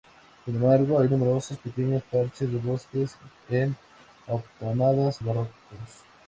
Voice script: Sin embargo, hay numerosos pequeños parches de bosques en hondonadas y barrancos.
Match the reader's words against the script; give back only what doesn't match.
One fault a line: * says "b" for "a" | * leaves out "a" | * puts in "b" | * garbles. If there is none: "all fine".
* leaves out "y"